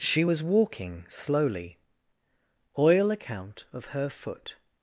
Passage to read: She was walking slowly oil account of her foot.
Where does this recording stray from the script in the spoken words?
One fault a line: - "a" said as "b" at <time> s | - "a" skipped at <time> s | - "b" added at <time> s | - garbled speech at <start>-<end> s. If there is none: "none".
none